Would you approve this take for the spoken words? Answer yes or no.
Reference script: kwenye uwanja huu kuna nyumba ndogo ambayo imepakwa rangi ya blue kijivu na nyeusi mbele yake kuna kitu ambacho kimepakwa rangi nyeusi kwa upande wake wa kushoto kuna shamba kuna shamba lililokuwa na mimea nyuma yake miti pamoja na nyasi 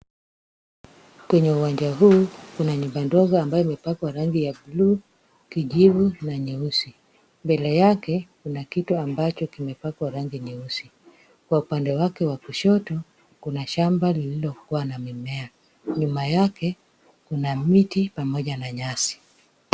no